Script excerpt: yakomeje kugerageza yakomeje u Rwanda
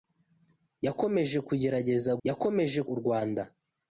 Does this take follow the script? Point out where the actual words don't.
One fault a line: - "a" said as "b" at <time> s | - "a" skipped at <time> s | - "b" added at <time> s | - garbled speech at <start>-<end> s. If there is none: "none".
none